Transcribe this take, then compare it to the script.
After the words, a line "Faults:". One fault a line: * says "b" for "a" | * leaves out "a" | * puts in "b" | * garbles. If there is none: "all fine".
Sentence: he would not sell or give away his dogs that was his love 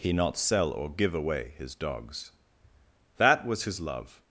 he not sell or give away his dogs that was his love
Faults:
* leaves out "would"